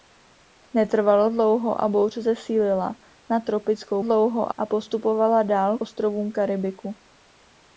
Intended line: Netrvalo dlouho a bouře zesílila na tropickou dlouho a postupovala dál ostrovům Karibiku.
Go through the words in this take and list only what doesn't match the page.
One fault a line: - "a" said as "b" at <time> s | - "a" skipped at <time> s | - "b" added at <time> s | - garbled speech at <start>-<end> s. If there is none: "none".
none